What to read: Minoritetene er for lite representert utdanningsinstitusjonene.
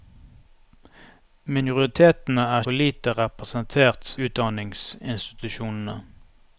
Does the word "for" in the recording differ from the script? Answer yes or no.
no